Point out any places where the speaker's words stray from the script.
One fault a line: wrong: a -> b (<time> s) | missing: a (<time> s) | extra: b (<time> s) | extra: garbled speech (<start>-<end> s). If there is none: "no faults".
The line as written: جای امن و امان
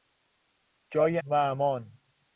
missing: امن (1.2 s)